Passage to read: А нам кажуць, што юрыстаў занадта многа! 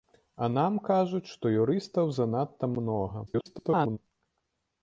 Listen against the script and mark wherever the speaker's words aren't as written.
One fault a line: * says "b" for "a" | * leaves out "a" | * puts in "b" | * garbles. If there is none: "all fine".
* garbles